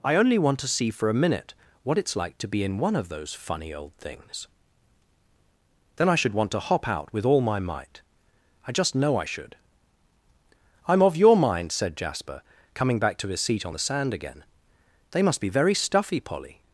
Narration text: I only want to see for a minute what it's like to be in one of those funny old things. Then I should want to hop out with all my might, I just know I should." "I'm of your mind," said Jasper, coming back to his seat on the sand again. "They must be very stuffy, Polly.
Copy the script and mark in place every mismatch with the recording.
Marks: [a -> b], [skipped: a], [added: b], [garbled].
I only want to see for a minute what it's like to be in one of those funny old things. Then I should want to hop out with all my might, I just know I should." "I'm of your mind," said Jasper, coming back to his seat on the sand again. "They must be very stuffy, Polly.